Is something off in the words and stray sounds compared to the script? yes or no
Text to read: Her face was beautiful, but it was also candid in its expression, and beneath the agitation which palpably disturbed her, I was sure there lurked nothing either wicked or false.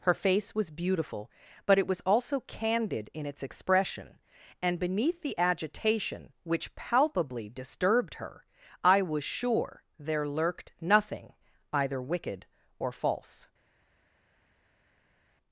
no